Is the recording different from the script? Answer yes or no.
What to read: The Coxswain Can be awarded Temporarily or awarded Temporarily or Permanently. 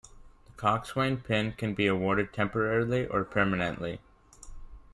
yes